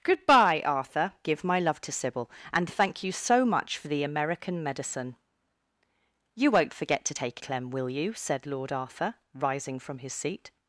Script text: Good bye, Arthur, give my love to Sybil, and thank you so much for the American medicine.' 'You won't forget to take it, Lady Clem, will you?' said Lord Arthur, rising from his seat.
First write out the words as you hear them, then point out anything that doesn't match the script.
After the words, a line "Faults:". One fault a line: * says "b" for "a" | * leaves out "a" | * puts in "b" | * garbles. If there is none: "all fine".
Good bye, Arthur, give my love to Sybil, and thank you so much for the American medicine.' 'You won't forget to take Clem, will you?' said Lord Arthur, rising from his seat.
Faults:
* leaves out "it Lady"